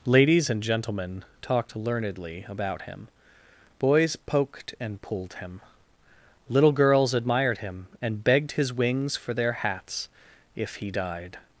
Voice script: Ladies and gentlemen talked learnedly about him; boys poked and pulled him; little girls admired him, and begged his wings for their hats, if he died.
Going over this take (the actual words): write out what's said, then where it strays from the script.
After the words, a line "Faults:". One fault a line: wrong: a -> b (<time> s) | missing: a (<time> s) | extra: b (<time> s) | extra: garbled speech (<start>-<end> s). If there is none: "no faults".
Ladies and gentlemen talked learnedly about him; boys poked and pulled him; little girls admired him, and begged his wings for their hats, if he died.
Faults:
no faults